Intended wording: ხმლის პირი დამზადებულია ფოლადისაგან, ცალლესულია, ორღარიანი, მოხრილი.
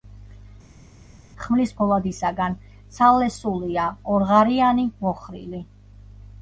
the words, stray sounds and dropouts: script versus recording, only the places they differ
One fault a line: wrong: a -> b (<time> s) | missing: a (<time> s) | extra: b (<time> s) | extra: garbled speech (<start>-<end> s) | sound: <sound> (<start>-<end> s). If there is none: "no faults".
missing: პირი დამზადებულია (1.7 s)